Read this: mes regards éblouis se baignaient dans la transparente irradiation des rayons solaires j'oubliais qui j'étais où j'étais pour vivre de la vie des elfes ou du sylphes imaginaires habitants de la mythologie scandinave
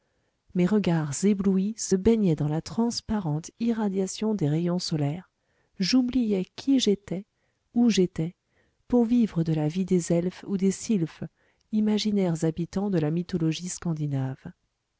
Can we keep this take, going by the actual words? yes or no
no